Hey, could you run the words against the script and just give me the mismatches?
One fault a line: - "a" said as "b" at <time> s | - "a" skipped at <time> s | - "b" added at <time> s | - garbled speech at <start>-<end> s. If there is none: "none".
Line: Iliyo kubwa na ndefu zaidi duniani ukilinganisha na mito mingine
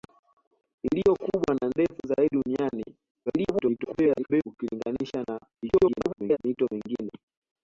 - garbled speech at 3.3-4.4 s
- garbled speech at 5.6-6.4 s